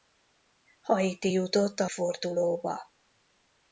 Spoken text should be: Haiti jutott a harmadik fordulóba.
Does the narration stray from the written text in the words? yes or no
yes